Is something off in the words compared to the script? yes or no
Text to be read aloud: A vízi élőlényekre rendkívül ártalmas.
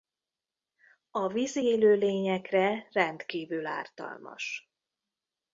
no